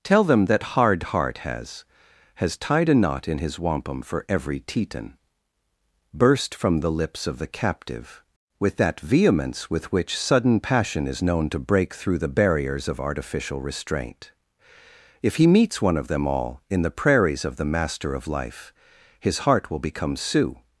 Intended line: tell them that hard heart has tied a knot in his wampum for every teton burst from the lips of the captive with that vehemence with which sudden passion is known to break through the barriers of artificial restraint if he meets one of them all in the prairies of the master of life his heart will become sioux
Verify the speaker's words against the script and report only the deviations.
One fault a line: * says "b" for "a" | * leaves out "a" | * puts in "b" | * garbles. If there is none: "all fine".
* puts in "has"